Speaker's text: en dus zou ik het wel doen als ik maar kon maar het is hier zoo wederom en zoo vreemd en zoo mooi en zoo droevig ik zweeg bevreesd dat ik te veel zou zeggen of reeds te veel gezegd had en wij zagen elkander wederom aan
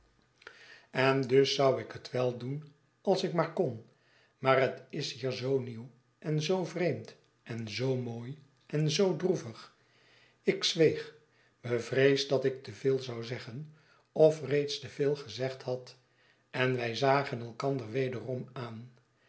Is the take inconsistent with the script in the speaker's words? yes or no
yes